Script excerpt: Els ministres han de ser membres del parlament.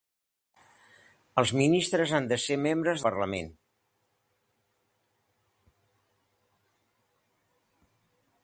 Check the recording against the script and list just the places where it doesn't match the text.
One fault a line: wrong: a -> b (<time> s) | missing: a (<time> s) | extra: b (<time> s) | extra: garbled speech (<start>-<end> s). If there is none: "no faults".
missing: del (3.0 s)